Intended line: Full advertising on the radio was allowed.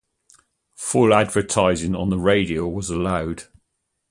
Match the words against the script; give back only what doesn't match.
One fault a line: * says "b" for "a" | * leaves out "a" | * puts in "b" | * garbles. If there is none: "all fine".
all fine